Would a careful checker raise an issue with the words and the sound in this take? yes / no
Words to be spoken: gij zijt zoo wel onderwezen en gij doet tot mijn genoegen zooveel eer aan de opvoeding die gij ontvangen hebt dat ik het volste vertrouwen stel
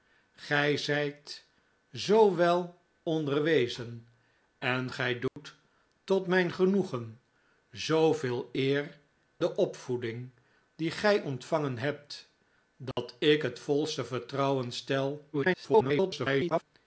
yes